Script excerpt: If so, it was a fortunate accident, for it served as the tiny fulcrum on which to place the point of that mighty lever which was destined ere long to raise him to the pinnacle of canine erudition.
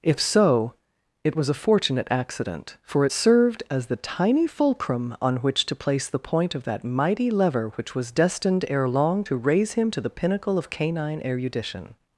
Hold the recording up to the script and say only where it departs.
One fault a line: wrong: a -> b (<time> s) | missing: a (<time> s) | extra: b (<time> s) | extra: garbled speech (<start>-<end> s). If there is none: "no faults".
no faults